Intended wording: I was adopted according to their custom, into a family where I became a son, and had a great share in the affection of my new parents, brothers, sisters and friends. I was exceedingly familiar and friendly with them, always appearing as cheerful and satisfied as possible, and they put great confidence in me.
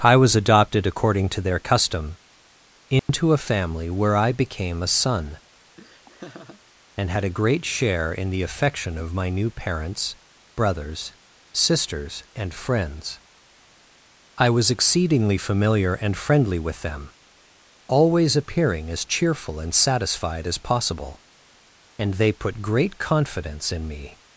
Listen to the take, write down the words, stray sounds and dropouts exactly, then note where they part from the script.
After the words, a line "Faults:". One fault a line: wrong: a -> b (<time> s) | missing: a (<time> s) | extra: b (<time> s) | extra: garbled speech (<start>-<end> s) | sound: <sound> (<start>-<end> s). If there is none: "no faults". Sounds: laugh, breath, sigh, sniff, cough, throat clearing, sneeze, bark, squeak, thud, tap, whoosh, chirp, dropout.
I was adopted according to their custom, into a family where I became a son, and had a great share in the affection of my new parents, brothers, sisters and friends. I was exceedingly familiar and friendly with them, always appearing as cheerful and satisfied as possible, and they put great confidence in me.
Faults:
sound: dropout (3.0-3.1 s)
sound: laugh (5.8-6.6 s)